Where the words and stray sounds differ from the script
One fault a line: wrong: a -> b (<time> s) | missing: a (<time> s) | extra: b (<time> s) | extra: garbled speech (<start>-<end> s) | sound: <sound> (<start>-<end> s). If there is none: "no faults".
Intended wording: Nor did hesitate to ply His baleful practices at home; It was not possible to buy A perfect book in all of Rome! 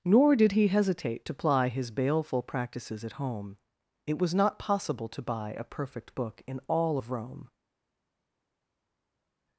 extra: he (0.5 s)